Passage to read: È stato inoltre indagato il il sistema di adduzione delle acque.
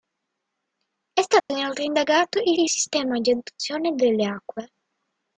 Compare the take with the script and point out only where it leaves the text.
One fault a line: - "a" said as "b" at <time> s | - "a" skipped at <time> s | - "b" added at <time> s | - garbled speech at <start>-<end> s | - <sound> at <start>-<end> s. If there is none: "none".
- dropout at 1.4-1.5 s